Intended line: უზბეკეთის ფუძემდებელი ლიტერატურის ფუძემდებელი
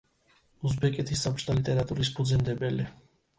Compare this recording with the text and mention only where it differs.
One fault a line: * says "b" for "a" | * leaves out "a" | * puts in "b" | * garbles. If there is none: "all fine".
* says "საბჭოთა" for "ფუძემდებელი"